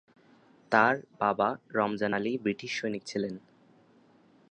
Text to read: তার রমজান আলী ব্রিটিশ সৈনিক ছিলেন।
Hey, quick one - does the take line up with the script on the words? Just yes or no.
no